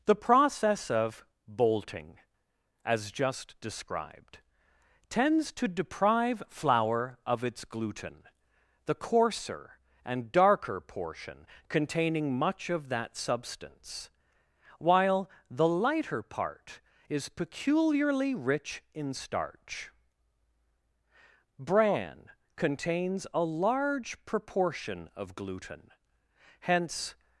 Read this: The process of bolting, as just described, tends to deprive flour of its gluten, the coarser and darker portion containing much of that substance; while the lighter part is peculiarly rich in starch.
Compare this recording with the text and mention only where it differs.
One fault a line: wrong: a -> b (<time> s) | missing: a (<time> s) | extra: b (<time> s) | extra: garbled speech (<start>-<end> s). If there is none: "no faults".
extra: Bran contains a large proportion of gluten hence (21.6 s)